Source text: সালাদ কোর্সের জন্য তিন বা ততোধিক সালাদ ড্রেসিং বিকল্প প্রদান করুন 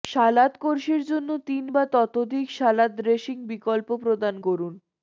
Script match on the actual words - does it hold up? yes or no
yes